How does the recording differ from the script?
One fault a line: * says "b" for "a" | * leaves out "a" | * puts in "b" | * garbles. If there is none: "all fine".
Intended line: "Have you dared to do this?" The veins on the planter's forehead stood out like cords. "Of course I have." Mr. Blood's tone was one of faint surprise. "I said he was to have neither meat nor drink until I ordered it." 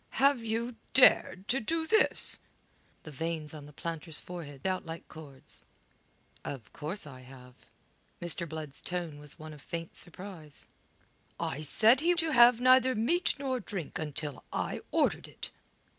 * leaves out "stood"
* leaves out "was"